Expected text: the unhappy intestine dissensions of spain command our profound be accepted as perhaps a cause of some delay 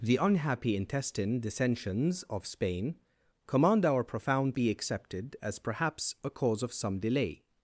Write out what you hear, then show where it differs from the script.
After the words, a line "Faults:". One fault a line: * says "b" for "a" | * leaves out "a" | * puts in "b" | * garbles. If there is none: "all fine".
the unhappy intestine dissensions of spain command our profound be accepted as perhaps a cause of some delay
Faults:
all fine